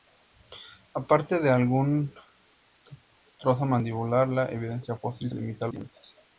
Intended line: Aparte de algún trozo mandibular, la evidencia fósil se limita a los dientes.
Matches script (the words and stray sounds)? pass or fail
fail